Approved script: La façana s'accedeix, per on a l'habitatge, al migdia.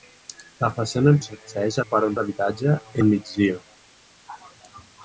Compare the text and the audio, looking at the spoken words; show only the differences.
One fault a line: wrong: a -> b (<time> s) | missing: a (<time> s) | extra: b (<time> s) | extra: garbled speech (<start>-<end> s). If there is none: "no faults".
no faults